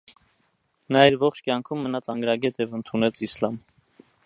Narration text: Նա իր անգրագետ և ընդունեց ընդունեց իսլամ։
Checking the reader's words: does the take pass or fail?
fail